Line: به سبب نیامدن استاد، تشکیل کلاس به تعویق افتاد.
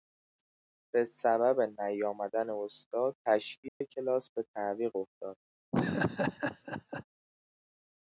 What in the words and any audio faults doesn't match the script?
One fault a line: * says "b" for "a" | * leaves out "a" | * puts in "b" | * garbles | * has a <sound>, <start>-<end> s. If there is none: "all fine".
* has a dropout, 3.7-3.8 s
* has a laugh, 5.7-7.0 s